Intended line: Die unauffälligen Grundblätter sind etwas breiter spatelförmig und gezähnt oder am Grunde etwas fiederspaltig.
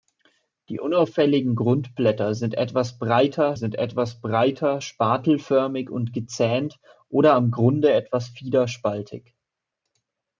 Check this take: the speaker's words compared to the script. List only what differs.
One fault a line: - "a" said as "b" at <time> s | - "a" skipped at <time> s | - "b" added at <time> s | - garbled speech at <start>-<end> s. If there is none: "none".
- "sind etwas breiter" added at 3.5 s